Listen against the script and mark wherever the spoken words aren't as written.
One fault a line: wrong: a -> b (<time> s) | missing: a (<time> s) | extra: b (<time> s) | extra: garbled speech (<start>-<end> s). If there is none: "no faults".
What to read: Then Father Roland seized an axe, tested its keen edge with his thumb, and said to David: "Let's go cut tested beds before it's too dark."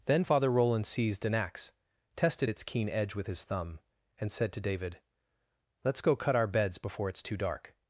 wrong: tested -> our (6.4 s)